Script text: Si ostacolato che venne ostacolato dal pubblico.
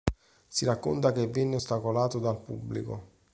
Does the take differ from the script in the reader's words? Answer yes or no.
yes